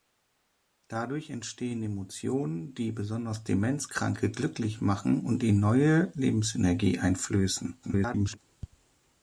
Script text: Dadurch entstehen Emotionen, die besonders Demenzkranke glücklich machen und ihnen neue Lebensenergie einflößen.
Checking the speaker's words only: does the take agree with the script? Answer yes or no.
no